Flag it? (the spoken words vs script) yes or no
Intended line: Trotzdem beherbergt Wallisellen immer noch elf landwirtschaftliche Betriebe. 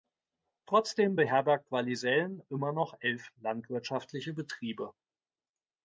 no